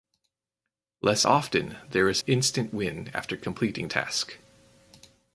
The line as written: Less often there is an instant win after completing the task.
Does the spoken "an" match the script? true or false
false